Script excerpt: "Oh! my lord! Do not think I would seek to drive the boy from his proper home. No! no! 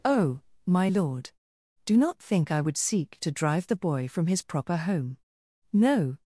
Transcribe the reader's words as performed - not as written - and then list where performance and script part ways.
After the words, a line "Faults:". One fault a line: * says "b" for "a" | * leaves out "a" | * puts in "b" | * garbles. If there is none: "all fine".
"Oh! my lord! Do not think I would seek to drive the boy from his proper home. No!
Faults:
* leaves out "no"